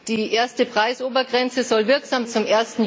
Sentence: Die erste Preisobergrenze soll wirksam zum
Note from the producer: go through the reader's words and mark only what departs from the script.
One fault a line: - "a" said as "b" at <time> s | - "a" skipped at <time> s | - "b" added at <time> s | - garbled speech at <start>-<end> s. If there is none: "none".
none